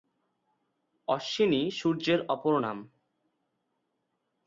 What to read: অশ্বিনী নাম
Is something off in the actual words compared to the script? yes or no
yes